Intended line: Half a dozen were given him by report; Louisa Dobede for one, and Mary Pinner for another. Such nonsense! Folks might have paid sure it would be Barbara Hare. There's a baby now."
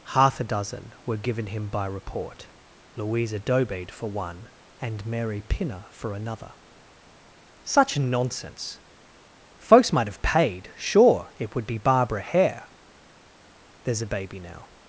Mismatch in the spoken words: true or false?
false